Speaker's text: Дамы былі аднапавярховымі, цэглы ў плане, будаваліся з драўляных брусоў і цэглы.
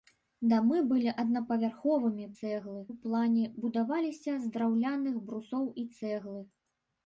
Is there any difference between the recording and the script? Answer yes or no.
no